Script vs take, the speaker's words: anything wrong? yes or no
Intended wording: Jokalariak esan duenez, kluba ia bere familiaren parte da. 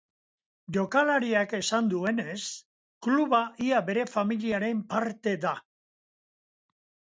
no